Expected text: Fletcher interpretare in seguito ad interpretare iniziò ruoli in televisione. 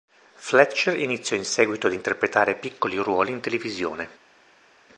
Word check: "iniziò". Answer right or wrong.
wrong